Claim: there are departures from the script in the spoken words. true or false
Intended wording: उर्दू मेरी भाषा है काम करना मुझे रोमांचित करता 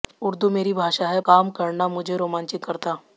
false